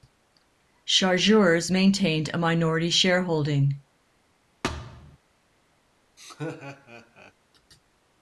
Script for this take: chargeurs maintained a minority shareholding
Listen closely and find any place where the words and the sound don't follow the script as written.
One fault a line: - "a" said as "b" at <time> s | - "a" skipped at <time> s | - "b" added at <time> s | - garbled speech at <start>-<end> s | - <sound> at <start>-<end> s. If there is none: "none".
- thud at 4.6-5.2 s
- laugh at 6.2-7.3 s